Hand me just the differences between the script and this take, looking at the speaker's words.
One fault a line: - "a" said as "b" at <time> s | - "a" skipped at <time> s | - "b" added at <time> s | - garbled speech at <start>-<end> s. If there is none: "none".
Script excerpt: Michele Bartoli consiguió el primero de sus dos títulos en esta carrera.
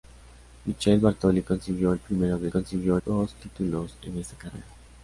- "sus" said as "consiguió" at 2.5 s